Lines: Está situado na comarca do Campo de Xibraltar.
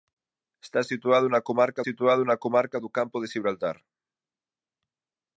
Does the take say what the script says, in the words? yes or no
no